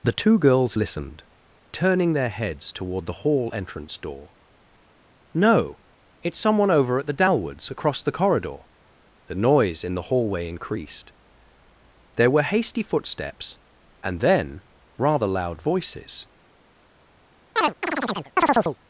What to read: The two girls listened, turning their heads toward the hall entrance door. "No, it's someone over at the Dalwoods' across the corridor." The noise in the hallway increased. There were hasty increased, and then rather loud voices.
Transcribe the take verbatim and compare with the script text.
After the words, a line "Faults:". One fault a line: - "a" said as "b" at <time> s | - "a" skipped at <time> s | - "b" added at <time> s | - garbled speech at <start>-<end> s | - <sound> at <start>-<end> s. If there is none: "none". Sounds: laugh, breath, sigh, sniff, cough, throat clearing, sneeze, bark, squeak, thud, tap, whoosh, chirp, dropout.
The two girls listened, turning their heads toward the hall entrance door. "No, it's someone over at the Dalwoods' across the corridor." The noise in the hallway increased. There were hasty footsteps, and then rather loud voices.
Faults:
- "increased" said as "footsteps" at 12.8 s
- chirp at 17.6-18.8 s